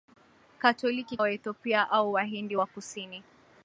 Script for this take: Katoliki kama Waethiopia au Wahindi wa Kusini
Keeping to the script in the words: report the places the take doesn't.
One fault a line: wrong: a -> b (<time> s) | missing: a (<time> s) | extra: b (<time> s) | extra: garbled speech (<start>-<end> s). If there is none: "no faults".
missing: kama (1.2 s)